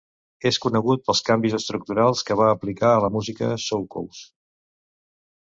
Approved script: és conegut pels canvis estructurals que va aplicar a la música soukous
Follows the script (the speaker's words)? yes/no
yes